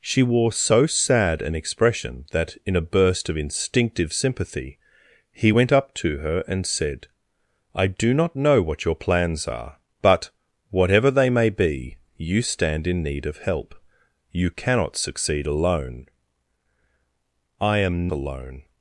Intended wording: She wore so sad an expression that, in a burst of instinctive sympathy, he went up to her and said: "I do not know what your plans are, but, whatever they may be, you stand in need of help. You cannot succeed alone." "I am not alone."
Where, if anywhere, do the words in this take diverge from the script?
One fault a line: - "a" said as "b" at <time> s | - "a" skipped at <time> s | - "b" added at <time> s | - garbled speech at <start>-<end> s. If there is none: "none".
- "not" skipped at 18.1 s